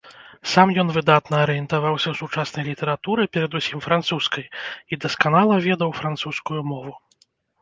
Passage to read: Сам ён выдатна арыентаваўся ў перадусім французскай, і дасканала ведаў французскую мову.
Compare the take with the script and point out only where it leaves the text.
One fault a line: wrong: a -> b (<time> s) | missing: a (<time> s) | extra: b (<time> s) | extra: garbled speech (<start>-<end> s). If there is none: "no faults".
extra: сучаснай літаратуры (2.2 s)